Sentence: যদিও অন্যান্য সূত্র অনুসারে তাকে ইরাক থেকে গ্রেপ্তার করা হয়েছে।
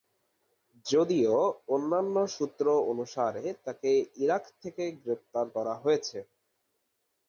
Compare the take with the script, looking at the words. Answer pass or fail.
pass